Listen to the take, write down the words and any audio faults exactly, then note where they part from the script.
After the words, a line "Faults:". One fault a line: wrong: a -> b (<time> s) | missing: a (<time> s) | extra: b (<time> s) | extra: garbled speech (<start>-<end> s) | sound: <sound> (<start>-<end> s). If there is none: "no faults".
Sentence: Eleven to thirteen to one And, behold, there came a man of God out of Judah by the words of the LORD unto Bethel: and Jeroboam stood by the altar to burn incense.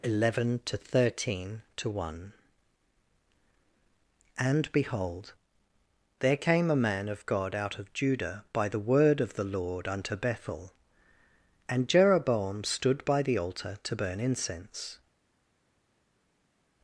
Eleven to thirteen to one And, behold, there came a man of God out of Judah by the word of the LORD unto Bethel: and Jeroboam stood by the altar to burn incense.
Faults:
wrong: words -> word (8.8 s)